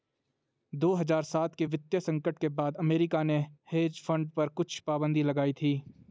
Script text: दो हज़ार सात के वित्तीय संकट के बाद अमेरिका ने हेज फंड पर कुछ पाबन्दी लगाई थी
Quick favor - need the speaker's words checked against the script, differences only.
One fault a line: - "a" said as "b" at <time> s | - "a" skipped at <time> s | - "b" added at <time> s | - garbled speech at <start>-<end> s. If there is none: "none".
none